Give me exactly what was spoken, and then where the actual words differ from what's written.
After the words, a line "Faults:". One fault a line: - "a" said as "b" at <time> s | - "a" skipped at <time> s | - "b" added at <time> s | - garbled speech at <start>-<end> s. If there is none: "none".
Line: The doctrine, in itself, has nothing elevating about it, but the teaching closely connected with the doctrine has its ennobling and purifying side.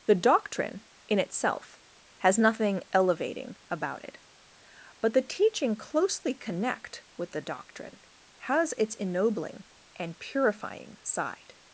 The doctrine, in itself, has nothing elevating about it, but the teaching closely connect with the doctrine has its ennobling and purifying side.
Faults:
- "connected" said as "connect" at 6.3 s